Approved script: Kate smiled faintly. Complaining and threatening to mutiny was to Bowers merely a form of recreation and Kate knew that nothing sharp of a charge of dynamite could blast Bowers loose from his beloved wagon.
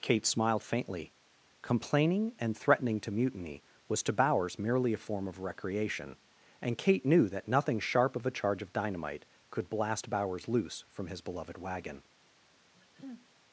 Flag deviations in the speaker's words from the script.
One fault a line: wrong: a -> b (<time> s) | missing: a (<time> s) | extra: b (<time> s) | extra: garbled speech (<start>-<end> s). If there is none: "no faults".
no faults